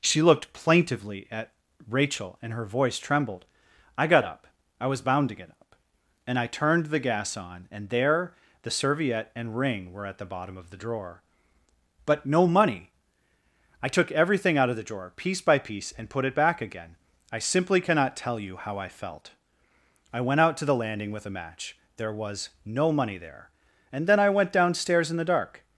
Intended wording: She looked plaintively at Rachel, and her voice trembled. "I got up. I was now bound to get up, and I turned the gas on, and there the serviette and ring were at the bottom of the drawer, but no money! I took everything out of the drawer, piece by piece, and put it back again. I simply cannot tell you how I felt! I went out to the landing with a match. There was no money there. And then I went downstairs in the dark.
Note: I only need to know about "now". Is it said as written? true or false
false